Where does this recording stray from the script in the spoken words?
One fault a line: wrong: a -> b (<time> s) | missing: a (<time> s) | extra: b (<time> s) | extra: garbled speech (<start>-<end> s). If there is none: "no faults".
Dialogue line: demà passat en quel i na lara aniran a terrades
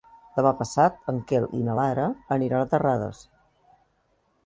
no faults